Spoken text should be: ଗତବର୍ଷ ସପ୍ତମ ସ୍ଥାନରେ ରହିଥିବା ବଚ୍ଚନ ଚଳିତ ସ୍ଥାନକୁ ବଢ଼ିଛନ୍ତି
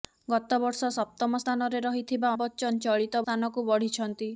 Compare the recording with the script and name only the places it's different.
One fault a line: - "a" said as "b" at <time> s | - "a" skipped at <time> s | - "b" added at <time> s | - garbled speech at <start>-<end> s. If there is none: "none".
none